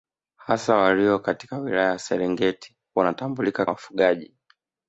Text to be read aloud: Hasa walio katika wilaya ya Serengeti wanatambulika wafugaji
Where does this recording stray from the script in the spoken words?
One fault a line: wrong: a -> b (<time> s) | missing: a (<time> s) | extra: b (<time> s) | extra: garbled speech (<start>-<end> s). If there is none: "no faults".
no faults